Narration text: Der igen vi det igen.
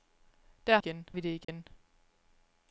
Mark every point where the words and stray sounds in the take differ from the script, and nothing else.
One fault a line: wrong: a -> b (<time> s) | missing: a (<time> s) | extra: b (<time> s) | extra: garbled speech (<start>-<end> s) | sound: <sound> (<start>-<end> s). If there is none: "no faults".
sound: dropout (1.4-1.5 s)